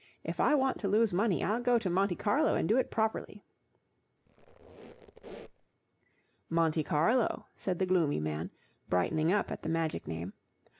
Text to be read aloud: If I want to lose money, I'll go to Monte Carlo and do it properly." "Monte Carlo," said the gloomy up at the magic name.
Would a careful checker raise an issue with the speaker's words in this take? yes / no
yes